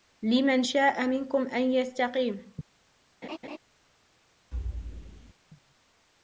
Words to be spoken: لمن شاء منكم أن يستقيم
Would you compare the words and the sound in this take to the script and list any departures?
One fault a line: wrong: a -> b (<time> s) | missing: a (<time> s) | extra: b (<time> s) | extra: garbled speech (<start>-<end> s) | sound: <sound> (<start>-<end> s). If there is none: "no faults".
sound: laugh (3.2-3.6 s)
sound: thud (4.5-5.3 s)